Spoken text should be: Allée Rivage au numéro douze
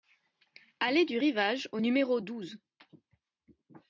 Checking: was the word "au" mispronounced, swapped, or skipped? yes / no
no